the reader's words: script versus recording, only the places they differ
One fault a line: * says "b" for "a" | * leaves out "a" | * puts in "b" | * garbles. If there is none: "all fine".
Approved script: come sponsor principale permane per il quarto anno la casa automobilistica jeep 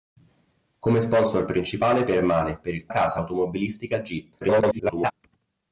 * leaves out "quarto anno la"
* garbles